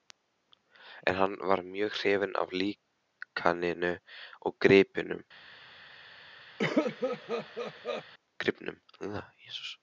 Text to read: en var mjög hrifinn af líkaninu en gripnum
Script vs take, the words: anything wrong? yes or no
yes